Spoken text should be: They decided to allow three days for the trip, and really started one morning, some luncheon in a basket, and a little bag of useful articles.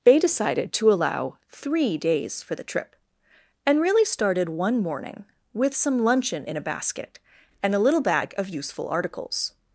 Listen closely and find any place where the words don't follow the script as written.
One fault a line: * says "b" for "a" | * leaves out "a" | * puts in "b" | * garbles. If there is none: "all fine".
* puts in "with"